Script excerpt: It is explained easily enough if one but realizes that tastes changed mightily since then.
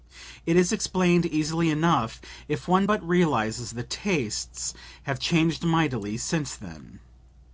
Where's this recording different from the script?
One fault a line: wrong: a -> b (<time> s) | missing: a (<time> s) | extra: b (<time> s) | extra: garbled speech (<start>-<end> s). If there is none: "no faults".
extra: have (5.0 s)